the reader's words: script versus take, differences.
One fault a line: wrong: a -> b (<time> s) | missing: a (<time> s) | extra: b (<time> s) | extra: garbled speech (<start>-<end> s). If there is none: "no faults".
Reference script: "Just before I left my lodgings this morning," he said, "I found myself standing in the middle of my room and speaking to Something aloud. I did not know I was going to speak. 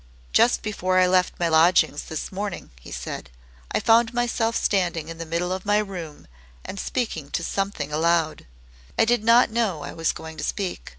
no faults